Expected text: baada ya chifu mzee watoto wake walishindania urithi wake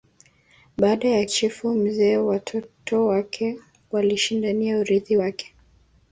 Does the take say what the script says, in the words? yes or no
yes